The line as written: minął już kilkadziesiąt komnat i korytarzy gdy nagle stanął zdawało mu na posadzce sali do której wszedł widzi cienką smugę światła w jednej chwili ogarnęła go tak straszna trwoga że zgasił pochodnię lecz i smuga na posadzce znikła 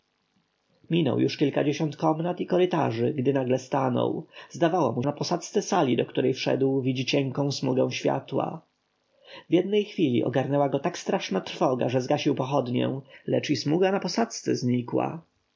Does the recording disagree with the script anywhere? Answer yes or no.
no